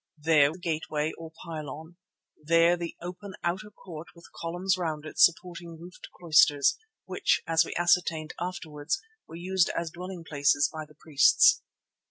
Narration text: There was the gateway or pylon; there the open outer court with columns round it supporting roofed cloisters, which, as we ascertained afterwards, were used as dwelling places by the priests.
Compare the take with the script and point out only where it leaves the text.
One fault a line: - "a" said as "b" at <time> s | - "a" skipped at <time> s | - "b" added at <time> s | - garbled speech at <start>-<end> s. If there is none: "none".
- "was" skipped at 0.5 s